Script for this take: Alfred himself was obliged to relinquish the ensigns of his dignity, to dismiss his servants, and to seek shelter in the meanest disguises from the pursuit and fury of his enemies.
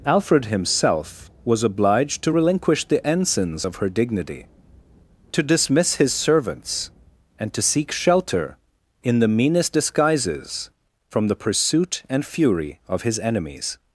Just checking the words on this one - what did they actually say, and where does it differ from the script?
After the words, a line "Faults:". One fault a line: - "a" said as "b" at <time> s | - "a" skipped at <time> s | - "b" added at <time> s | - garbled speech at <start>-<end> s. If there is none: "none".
Alfred himself was obliged to relinquish the ensigns of her dignity, to dismiss his servants, and to seek shelter in the meanest disguises from the pursuit and fury of his enemies.
Faults:
- "his" said as "her" at 3.8 s